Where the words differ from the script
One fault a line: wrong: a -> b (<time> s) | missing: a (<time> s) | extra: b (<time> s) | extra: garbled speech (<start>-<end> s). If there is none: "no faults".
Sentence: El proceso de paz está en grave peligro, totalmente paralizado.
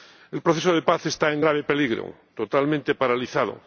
no faults